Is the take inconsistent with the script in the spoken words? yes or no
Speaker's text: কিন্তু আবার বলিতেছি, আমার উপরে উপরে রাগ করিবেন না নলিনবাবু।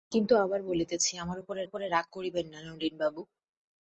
no